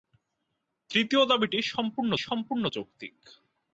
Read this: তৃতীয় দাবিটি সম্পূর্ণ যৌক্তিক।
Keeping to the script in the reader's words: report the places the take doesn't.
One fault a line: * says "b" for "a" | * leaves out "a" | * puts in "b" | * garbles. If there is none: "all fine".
* puts in "সম্পূর্ণ"